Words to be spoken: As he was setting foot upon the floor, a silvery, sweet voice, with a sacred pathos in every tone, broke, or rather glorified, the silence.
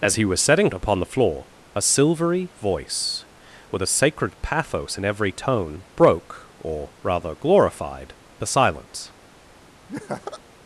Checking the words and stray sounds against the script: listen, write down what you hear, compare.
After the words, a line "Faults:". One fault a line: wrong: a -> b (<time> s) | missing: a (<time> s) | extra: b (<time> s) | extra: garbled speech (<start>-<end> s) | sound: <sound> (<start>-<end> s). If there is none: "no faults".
As he was setting upon the floor, a silvery, voice, with a sacred pathos in every tone, broke, or rather glorified, the silence.
Faults:
missing: foot (0.7 s)
missing: sweet (2.5 s)
sound: laugh (9.9-10.4 s)